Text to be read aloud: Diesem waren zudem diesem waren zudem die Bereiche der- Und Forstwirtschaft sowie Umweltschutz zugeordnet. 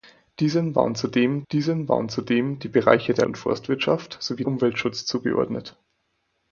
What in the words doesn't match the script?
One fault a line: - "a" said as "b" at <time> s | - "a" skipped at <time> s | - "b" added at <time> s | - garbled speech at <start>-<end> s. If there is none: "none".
none